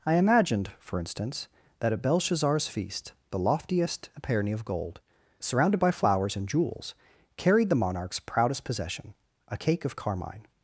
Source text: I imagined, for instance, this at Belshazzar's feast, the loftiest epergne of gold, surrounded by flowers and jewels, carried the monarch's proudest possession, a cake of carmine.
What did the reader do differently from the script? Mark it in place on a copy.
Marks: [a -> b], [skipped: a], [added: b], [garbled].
I imagined, for instance, [this -> that] at Belshazzar's feast, the loftiest epergne of gold, surrounded by flowers and jewels, carried the monarch's proudest possession, a cake of carmine.